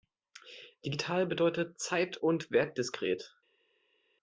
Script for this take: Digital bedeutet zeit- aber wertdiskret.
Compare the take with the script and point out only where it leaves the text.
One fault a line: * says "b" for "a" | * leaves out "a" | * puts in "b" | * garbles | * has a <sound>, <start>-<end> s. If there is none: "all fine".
* says "und" for "aber"